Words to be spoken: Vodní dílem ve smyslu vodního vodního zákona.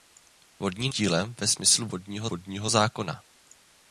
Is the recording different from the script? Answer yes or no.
no